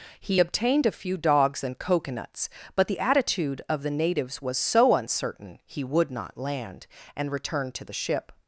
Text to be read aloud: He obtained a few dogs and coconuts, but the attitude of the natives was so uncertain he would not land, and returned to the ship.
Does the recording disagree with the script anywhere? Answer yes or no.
no